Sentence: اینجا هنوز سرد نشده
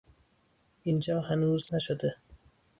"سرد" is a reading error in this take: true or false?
true